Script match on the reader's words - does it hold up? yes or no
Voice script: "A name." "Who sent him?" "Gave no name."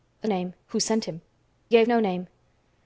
yes